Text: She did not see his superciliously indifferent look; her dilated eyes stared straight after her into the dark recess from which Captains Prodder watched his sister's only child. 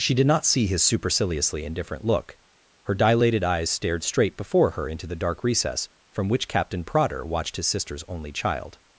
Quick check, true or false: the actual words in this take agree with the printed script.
false